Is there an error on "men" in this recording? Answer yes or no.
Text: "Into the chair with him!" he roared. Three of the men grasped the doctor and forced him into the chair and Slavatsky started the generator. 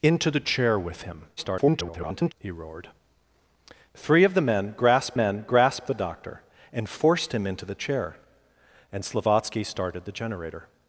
no